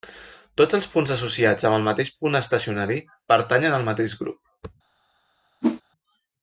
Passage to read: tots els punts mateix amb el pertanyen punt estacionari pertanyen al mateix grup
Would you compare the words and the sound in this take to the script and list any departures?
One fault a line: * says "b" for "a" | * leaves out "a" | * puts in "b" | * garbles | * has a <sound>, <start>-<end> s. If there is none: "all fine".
* says "associats" for "mateix"
* says "mateix" for "pertanyen"
* has a whoosh, 5.6-5.8 s